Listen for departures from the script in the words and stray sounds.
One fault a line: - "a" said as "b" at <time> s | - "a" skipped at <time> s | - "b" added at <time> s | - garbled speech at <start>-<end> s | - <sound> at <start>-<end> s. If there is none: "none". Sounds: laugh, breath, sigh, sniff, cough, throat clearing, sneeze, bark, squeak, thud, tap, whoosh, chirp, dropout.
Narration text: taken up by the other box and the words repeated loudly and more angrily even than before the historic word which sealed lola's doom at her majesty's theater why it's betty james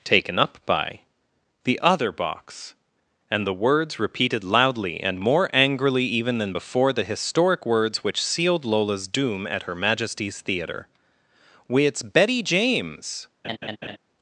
- "word" said as "words" at 7.7 s
- laugh at 13.4-14.0 s